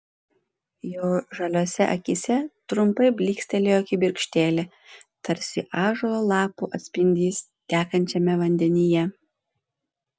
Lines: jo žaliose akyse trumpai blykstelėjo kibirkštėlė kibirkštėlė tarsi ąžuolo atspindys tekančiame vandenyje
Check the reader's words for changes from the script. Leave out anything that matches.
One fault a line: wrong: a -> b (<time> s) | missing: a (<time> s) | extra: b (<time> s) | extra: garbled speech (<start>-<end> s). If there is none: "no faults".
missing: kibirkštėlė (4.6 s)
extra: lapų (6.3 s)